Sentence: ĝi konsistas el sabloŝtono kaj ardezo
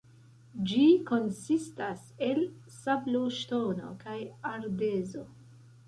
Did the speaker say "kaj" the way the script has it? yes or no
yes